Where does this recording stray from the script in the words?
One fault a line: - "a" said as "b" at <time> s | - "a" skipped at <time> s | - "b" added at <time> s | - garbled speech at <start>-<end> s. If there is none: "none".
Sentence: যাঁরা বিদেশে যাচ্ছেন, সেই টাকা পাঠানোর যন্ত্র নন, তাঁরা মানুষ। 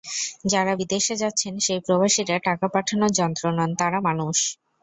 - "প্রবাসীরা" added at 1.8 s